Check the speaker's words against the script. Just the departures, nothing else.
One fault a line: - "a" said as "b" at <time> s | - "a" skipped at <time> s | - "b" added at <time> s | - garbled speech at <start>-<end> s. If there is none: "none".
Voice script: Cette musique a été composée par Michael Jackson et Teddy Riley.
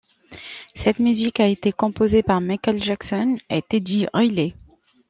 none